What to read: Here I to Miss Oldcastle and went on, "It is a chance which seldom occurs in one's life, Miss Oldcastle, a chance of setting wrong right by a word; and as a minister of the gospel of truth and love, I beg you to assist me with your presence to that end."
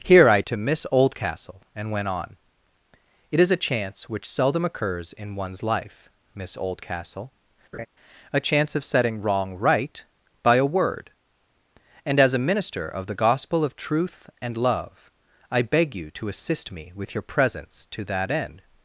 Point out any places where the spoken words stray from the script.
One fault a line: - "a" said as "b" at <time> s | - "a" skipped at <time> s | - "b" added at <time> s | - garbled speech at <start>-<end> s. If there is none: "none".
none